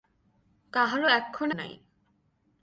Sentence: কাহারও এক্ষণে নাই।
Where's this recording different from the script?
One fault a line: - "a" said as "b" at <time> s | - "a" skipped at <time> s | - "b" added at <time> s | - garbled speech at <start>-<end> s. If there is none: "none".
none